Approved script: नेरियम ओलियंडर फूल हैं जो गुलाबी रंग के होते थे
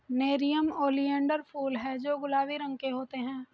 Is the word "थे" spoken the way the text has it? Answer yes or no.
no